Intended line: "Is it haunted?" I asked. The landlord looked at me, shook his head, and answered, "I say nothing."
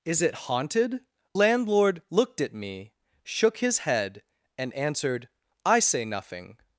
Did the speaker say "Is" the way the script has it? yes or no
yes